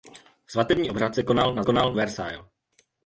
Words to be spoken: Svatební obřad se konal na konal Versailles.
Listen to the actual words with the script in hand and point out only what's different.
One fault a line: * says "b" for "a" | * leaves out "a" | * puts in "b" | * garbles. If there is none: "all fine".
all fine